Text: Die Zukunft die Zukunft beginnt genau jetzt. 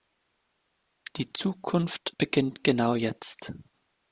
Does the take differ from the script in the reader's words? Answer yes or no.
yes